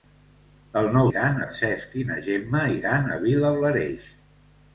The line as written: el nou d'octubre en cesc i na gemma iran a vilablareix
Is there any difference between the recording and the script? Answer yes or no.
yes